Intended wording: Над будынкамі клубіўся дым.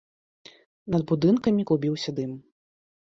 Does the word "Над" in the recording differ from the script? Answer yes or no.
no